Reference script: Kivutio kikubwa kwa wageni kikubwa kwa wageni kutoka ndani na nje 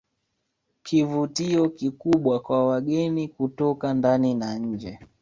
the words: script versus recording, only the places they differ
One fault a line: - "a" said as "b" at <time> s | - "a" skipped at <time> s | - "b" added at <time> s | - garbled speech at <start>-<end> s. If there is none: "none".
- "kikubwa kwa wageni" skipped at 3.3 s